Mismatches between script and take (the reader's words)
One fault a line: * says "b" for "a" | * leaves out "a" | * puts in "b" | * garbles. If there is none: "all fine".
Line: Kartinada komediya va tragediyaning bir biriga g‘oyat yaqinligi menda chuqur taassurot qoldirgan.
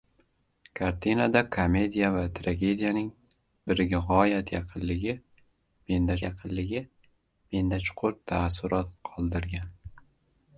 * leaves out "bir"
* puts in "yaqinligi menda"